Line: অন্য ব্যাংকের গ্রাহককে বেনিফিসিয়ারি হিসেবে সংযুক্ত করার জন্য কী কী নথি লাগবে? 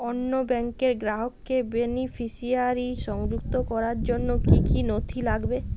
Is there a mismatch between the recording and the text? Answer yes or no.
yes